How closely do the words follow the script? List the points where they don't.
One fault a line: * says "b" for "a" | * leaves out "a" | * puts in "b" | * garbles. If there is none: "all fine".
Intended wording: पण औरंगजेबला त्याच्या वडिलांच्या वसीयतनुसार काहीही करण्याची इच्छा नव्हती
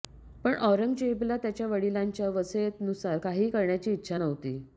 all fine